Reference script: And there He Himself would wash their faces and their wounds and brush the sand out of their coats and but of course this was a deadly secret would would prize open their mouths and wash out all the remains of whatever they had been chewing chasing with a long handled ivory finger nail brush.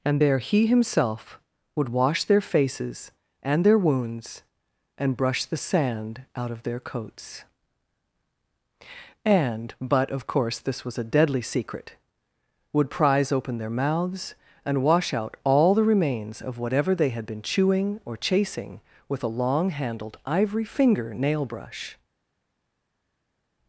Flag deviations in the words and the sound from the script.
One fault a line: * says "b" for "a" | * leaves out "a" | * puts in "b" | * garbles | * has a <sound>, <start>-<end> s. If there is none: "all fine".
* leaves out "would"
* puts in "or"